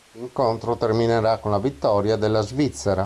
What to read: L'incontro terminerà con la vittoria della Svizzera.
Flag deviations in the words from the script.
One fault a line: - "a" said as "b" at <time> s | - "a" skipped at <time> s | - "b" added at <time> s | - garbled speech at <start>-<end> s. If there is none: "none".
none